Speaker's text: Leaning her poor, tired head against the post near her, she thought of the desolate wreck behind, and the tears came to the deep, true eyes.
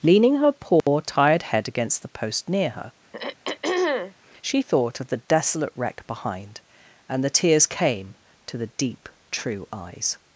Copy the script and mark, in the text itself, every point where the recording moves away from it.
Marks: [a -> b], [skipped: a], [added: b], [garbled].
Leaning her poor, tired head against the post near her, she thought of the desolate wreck behind, and the tears came to the deep, true eyes.